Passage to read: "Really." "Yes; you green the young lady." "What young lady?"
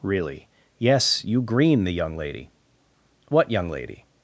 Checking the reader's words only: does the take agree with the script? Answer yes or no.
yes